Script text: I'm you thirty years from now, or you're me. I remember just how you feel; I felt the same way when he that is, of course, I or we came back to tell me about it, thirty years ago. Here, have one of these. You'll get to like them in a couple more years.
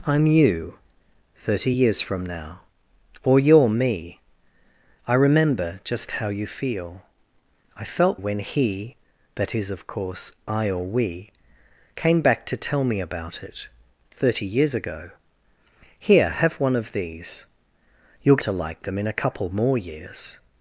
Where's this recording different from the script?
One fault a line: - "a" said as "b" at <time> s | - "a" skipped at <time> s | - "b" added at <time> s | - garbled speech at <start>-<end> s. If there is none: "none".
- "the same way" skipped at 8.2 s
- "get" skipped at 18.4 s